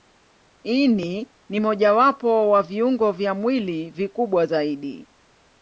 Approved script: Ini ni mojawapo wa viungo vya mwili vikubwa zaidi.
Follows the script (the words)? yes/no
yes